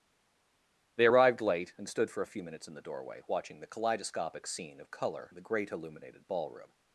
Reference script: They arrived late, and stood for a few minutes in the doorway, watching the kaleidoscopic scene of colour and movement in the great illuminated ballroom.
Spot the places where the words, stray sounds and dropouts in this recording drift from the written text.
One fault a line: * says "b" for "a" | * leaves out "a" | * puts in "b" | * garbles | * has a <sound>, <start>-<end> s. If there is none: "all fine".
* leaves out "and movement"